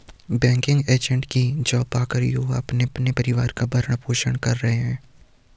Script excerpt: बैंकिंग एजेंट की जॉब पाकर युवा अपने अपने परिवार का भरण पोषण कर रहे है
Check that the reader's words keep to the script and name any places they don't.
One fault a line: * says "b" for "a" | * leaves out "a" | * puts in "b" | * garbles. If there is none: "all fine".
all fine